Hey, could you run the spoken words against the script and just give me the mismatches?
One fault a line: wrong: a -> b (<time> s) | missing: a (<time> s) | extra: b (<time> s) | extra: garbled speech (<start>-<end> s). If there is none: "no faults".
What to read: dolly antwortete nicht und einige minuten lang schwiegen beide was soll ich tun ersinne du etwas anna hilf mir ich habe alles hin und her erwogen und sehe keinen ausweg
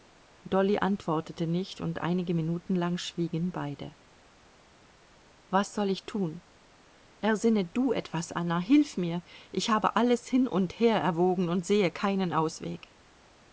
no faults